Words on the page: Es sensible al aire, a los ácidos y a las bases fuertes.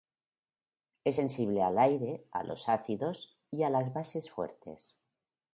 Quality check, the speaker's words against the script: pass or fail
pass